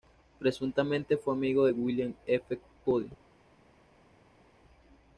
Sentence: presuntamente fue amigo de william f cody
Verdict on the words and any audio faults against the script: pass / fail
pass